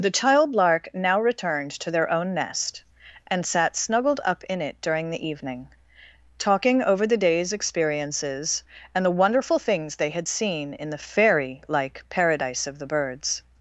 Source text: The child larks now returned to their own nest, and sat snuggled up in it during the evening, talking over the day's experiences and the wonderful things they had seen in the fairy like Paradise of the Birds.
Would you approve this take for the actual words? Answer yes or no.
no